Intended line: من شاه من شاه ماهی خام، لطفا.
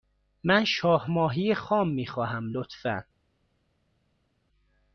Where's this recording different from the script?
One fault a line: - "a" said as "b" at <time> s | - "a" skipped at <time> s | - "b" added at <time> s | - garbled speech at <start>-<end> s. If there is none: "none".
- "من شاه ماهی خام" said as "ماهی خام می خواهم" at 1.1 s